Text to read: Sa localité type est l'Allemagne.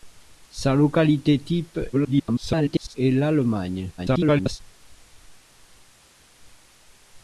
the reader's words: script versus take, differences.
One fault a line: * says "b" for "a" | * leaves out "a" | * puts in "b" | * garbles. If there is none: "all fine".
* garbles
* garbles